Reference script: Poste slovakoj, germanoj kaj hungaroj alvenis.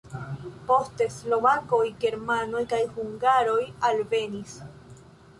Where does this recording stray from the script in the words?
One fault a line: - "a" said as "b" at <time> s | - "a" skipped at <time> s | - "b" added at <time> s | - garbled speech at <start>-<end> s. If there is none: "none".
none